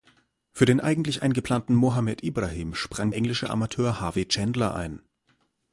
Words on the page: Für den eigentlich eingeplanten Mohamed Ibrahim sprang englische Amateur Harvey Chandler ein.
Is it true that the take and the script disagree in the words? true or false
false